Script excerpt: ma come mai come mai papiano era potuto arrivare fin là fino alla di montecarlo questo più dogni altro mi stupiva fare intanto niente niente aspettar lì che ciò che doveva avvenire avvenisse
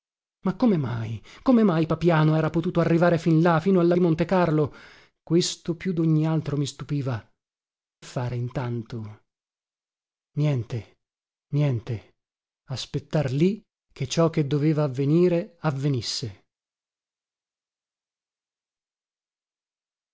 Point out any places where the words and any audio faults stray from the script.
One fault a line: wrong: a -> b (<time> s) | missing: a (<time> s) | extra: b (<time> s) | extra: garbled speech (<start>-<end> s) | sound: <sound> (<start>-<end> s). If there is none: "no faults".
no faults